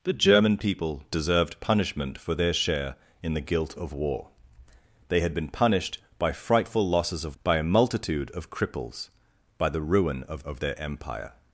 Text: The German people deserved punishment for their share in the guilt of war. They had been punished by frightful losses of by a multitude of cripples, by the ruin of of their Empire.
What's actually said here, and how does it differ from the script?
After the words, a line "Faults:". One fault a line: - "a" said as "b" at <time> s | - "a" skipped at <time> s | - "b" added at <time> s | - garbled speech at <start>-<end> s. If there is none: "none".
The German people deserved punishment for their share in the guilt of war. They had been punished by frightful losses of by a multitude of cripples, by the ruin of of their Empire.
Faults:
none